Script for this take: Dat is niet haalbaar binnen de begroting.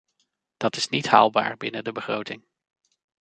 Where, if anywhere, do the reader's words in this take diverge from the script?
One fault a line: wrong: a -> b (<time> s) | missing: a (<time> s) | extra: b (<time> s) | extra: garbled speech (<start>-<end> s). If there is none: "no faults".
no faults